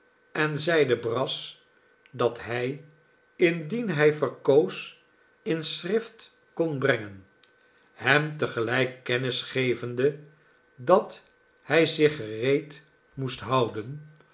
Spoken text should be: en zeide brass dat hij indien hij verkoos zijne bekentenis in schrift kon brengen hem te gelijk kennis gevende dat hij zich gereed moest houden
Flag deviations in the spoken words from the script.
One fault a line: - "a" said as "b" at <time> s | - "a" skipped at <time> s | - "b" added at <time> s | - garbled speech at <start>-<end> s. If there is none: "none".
- "zijne bekentenis" skipped at 5.0 s